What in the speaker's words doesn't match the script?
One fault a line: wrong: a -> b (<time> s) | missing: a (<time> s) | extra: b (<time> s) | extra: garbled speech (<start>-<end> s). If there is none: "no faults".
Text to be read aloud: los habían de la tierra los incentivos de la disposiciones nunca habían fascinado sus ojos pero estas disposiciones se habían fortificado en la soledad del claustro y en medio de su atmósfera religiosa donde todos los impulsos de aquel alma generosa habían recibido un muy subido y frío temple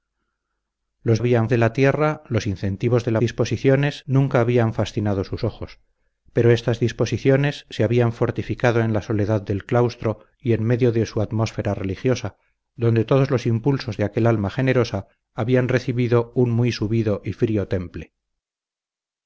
no faults